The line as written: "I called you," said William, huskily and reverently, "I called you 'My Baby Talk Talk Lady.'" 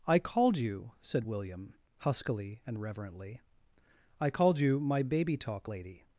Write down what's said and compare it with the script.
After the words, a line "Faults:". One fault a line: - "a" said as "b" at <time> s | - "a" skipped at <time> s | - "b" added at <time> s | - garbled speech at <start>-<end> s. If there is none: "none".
"I called you," said William, huskily and reverently, "I called you 'My Baby Talk Lady.'"
Faults:
- "Talk" skipped at 5.7 s